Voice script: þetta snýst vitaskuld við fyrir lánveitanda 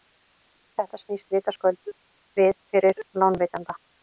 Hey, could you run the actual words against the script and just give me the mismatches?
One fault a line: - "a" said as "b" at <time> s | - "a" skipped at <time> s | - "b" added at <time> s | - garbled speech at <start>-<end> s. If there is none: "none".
none